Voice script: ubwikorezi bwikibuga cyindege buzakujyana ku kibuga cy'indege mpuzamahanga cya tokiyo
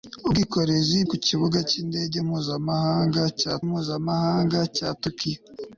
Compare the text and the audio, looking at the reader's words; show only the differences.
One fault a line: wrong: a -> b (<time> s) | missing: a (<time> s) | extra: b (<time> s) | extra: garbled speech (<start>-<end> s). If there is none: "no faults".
missing: bwikibuga cyindege buzakujyana (1.0 s)
extra: mpuzamahanga cya (3.7 s)